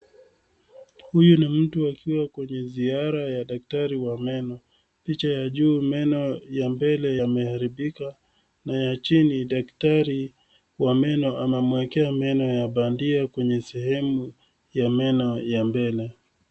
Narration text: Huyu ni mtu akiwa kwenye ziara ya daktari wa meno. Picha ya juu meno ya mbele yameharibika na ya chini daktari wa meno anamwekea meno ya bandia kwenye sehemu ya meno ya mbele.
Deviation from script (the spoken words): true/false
false